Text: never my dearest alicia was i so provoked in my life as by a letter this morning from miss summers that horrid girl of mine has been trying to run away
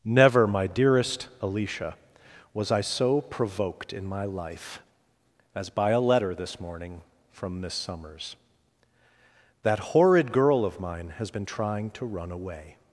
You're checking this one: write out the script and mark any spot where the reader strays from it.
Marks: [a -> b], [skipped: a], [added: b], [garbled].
never my dearest alicia was i so provoked in my life as by a letter this morning from miss summers that horrid girl of mine has been trying to run away